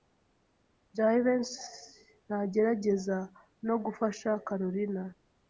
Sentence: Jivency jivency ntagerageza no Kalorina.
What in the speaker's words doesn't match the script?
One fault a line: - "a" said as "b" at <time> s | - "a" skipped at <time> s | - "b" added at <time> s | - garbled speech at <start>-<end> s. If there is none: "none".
- "jivency" skipped at 1.6 s
- "gufasha" added at 3.8 s